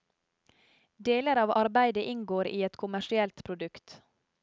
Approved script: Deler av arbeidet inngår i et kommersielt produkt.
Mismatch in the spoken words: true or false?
false